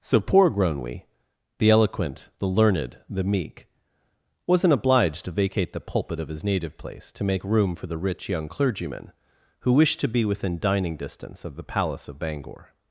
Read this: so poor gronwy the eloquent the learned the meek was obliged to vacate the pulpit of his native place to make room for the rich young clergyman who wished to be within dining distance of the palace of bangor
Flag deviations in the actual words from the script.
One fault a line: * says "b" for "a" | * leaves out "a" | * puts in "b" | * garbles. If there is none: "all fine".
* says "wasn't" for "was"